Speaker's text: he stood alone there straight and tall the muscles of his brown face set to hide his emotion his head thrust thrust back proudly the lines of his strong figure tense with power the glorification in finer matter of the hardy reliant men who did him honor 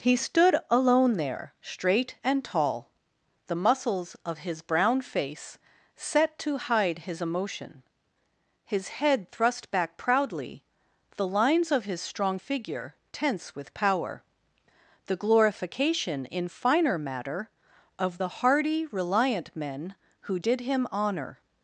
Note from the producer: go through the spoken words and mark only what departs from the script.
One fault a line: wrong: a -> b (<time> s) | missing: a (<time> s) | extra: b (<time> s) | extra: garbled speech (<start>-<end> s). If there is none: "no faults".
missing: thrust (9.7 s)